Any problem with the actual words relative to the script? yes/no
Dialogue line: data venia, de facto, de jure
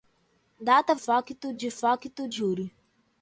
yes